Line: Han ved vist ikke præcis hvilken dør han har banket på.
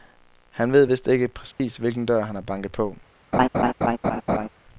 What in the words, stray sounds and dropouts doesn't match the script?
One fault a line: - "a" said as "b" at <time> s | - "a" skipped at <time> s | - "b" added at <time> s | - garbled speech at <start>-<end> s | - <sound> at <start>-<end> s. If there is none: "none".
- dropout at 1.5-1.6 s
- laugh at 3.3-4.5 s